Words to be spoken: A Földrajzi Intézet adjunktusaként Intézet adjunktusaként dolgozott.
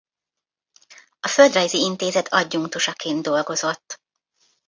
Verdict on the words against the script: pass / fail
fail